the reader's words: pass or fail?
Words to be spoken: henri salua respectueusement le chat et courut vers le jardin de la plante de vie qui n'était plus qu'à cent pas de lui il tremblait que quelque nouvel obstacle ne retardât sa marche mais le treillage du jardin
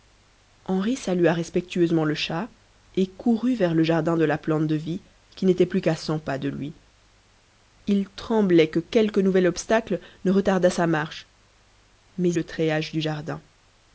pass